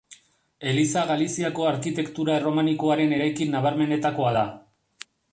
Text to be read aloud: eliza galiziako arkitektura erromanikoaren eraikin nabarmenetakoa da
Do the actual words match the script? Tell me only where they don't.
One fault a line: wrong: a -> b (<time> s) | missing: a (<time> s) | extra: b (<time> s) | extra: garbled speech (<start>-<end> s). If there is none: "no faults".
no faults